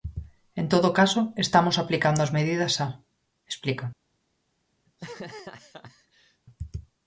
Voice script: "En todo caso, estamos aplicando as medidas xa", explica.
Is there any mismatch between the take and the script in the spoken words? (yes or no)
no